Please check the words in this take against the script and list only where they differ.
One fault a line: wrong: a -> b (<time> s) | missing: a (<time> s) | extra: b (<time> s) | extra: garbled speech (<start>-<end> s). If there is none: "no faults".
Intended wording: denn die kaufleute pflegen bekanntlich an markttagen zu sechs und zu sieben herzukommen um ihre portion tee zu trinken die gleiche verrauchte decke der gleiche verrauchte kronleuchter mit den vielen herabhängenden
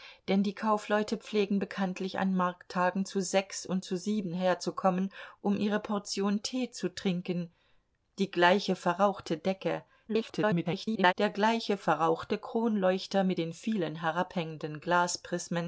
extra: garbled speech (10.1-11.1 s)